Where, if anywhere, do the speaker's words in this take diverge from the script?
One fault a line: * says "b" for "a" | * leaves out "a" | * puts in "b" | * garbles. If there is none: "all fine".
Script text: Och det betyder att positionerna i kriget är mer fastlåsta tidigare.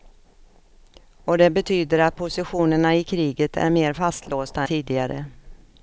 all fine